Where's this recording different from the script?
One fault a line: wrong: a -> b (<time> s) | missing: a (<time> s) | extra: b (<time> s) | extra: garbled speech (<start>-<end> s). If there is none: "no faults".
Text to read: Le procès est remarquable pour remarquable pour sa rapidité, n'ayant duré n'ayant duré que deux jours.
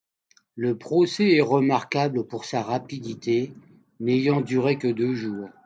missing: remarquable pour (2.5 s)
missing: n'ayant duré (4.8 s)